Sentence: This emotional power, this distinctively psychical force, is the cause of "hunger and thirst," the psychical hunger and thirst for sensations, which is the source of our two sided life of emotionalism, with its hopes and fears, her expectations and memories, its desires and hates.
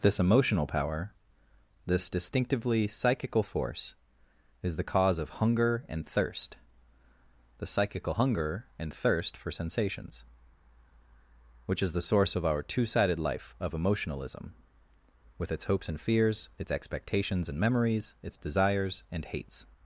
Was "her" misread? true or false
true